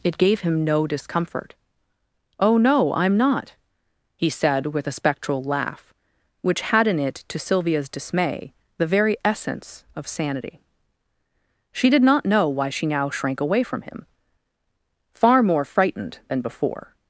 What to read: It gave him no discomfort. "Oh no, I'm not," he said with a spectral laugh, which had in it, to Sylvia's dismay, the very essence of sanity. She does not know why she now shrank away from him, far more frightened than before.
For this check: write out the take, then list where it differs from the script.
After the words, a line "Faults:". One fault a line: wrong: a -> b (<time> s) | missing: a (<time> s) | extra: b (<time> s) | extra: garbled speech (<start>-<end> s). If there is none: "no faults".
It gave him no discomfort. "Oh no, I'm not," he said with a spectral laugh, which had in it, to Sylvia's dismay, the very essence of sanity. She did not know why she now shrank away from him, far more frightened than before.
Faults:
wrong: does -> did (11.9 s)